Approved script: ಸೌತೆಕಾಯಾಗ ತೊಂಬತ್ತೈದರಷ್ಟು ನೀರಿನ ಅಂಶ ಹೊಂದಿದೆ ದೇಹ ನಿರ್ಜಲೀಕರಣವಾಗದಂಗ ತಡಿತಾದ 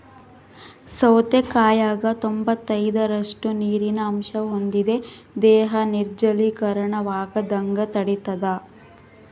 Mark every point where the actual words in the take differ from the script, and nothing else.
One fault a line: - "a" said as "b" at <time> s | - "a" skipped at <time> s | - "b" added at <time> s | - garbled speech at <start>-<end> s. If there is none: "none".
none